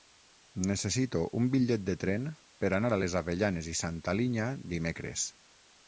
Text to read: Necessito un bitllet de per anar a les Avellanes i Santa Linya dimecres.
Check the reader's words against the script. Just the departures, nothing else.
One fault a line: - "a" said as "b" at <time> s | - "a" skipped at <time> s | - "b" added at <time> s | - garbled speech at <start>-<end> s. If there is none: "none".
- "tren" added at 2.0 s